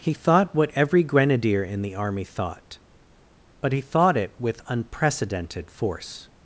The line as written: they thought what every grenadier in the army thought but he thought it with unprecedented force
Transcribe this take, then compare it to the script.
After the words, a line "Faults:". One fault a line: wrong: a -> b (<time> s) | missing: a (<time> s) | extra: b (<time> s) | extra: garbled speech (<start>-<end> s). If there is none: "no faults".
he thought what every grenadier in the army thought but he thought it with unprecedented force
Faults:
wrong: they -> he (0.0 s)